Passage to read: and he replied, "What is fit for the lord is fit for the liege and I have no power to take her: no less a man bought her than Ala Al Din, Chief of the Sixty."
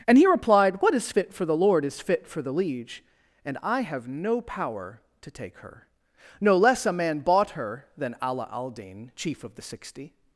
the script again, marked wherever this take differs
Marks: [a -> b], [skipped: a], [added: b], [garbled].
and he replied, "What is fit for the lord is fit for the liege and I have no power to take her: no less a man bought her than Ala Al Din, Chief of the Sixty."